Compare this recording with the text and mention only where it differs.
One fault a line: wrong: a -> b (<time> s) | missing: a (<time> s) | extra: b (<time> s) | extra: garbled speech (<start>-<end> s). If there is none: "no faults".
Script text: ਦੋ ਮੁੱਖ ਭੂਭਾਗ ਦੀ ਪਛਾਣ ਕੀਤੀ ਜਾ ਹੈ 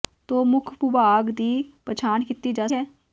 no faults